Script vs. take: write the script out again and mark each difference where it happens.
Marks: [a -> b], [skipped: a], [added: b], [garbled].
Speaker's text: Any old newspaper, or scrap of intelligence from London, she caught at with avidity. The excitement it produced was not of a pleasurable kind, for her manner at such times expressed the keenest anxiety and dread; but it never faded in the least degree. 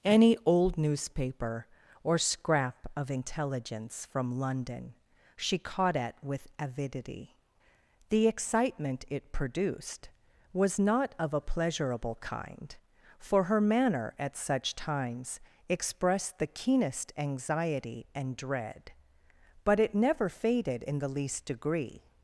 Any old newspaper, or scrap of intelligence from London, she caught at with avidity. The excitement it produced was not of a pleasurable kind, for her manner at such times expressed the keenest anxiety and dread; but it never faded in the least degree.